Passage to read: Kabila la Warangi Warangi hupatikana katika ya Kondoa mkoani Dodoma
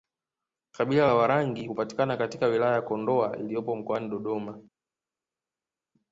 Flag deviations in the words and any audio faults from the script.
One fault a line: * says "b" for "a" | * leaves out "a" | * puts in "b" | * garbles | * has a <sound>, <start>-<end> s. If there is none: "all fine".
* leaves out "Warangi"
* puts in "wilaya"
* puts in "iliyopo"